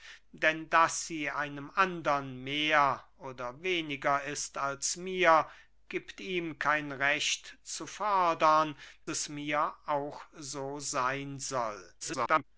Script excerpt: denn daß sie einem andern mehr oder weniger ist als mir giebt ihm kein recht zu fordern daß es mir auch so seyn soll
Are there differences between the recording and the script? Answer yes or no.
yes